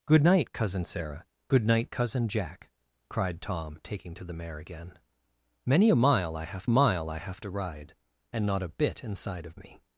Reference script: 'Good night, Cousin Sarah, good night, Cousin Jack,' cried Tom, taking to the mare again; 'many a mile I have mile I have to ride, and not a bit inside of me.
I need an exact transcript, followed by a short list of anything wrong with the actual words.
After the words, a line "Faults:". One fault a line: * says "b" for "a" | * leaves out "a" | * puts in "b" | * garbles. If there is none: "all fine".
'Good night, Cousin Sarah, good night, Cousin Jack,' cried Tom, taking to the mare again; 'many a mile I have mile I have to ride, and not a bit inside of me.
Faults:
all fine